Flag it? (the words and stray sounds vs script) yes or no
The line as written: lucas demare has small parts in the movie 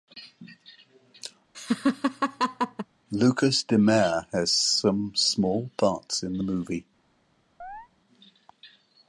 yes